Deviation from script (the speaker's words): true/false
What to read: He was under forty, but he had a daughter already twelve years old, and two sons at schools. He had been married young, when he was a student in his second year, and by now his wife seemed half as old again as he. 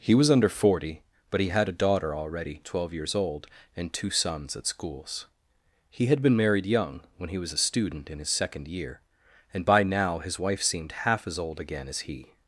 false